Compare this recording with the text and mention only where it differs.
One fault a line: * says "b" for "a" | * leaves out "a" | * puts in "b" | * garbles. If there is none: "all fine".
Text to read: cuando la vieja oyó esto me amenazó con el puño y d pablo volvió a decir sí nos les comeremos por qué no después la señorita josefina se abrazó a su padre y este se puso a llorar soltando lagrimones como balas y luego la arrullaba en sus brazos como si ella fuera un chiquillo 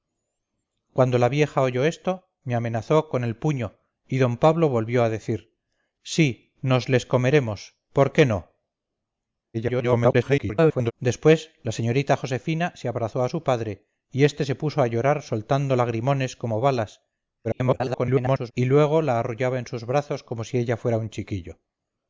* garbles
* garbles